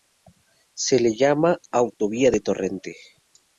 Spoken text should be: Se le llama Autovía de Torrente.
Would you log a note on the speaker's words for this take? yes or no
no